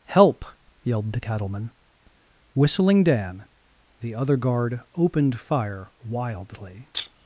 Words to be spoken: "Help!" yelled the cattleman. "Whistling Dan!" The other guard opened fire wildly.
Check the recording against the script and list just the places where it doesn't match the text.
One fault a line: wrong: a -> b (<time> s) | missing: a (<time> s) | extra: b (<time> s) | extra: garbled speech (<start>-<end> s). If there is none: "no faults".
no faults